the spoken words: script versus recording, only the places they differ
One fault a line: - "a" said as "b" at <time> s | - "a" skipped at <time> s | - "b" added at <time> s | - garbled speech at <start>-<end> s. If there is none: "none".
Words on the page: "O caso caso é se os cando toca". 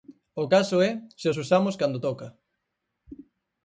- "caso" skipped at 0.8 s
- "usamos" added at 1.4 s